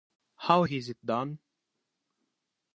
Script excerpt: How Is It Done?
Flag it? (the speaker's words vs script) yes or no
no